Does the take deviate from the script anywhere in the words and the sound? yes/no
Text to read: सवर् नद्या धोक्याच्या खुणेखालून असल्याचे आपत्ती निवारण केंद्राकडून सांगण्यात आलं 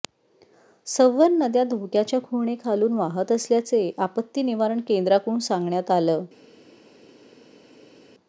yes